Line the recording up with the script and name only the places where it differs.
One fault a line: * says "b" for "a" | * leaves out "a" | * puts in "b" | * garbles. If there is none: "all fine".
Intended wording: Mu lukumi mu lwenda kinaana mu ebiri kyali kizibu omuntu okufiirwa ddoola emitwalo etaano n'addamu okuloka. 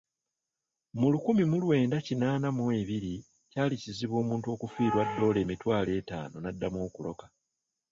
all fine